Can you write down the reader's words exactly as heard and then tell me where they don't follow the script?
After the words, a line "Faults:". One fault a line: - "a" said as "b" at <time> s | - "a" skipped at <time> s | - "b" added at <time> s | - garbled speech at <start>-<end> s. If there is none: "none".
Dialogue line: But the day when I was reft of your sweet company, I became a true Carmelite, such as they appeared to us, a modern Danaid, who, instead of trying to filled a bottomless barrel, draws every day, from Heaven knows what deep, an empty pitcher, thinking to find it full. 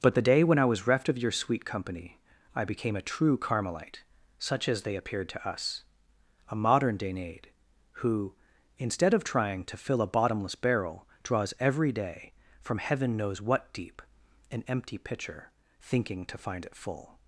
But the day when I was reft of your sweet company, I became a true Carmelite, such as they appeared to us, a modern Danaid, who, instead of trying to fill a bottomless barrel, draws every day, from Heaven knows what deep, an empty pitcher, thinking to find it full.
Faults:
- "filled" said as "fill" at 9.8 s